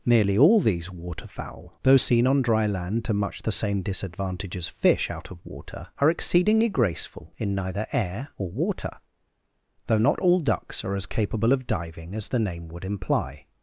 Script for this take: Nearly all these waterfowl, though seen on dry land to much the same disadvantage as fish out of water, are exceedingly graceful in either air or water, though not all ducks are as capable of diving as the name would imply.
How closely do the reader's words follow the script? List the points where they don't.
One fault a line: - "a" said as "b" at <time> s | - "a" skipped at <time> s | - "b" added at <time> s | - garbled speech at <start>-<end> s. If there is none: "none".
- "either" said as "neither" at 7.5 s